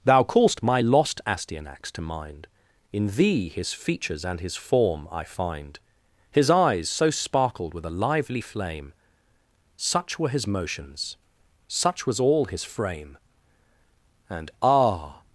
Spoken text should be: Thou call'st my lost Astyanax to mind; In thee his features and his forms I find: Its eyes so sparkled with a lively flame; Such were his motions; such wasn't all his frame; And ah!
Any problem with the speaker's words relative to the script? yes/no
yes